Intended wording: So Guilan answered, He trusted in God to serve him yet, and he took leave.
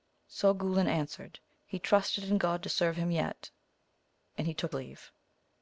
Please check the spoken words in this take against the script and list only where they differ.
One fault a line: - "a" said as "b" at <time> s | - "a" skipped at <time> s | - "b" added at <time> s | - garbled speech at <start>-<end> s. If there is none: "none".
none